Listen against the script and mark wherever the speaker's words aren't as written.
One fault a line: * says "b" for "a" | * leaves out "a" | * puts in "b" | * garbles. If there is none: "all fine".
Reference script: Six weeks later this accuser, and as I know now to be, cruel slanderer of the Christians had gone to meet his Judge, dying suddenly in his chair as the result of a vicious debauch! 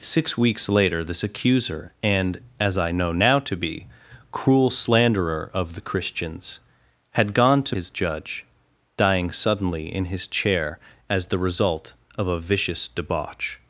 * leaves out "meet"